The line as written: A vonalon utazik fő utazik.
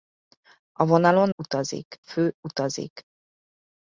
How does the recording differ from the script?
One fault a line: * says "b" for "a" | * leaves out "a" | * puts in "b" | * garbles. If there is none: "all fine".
all fine